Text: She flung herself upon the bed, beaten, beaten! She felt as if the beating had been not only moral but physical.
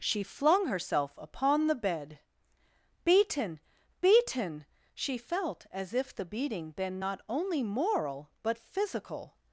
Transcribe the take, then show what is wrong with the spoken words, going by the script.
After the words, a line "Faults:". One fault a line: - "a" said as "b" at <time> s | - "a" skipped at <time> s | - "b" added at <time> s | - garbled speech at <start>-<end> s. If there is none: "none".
She flung herself upon the bed, beaten, beaten! She felt as if the beating been not only moral but physical.
Faults:
- "had" skipped at 6.7 s